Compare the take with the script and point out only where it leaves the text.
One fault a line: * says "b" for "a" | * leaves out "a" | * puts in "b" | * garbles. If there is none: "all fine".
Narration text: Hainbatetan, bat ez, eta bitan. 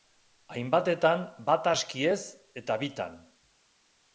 * puts in "aski"